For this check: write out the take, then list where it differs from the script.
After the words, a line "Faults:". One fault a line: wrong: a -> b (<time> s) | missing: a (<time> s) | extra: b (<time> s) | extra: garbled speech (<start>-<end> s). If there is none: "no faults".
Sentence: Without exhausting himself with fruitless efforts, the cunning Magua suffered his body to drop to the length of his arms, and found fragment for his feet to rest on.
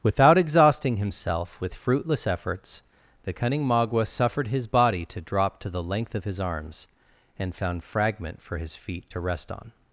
Without exhausting himself with fruitless efforts, the cunning Magua suffered his body to drop to the length of his arms, and found fragment for his feet to rest on.
Faults:
no faults